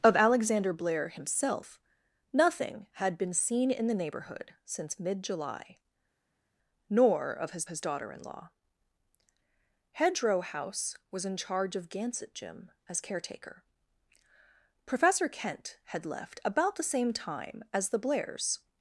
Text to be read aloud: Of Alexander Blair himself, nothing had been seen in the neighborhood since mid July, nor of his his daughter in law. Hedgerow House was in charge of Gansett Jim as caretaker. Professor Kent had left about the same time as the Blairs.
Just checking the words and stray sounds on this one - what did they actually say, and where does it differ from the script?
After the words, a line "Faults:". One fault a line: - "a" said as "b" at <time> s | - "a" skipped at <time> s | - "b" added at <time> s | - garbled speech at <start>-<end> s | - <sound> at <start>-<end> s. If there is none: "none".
Of Alexander Blair himself, nothing had been seen in the neighborhood since mid July, nor of his his daughter in law. Hedgerow House was in charge of Gansett Jim as caretaker. Professor Kent had left about the same time as the Blairs.
Faults:
none